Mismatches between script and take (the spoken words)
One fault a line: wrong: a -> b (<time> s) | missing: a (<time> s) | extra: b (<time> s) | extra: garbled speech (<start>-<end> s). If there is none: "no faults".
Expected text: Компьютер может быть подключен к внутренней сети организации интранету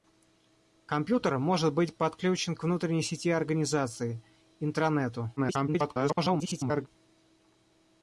extra: garbled speech (5.4-6.9 s)